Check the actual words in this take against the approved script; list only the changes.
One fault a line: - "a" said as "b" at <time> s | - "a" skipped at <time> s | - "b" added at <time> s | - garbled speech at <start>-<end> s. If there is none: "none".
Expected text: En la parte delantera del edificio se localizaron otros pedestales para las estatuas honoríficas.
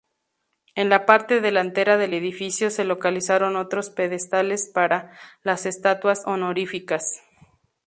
none